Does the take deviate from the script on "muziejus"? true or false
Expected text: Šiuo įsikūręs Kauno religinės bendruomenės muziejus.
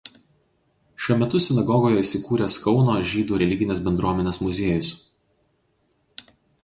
false